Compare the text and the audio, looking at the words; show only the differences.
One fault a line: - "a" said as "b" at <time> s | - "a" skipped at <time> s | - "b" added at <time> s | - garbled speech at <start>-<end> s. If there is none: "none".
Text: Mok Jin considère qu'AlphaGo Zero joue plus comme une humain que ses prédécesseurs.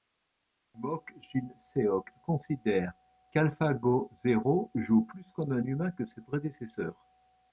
- "seok" added at 1.6 s
- "une" said as "un" at 5.5 s